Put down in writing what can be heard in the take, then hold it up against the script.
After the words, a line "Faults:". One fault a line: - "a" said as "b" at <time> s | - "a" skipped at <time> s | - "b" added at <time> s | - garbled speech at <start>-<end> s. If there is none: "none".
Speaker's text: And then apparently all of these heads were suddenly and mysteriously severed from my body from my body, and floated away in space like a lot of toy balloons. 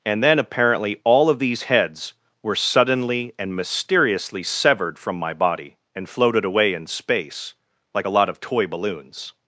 And then apparently all of these heads were suddenly and mysteriously severed from my body, and floated away in space like a lot of toy balloons.
Faults:
- "from my body" skipped at 5.8 s